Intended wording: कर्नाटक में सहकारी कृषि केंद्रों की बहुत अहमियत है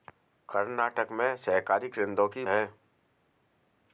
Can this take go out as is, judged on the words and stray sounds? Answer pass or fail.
fail